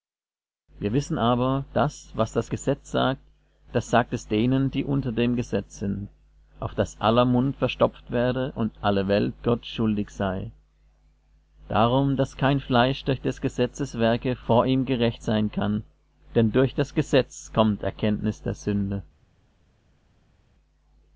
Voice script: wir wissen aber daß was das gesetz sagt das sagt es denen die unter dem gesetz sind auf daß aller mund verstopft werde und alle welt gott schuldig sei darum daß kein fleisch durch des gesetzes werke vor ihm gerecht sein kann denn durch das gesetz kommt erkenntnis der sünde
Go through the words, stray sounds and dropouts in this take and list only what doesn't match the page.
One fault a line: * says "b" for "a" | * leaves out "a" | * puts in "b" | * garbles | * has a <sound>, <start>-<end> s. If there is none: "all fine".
all fine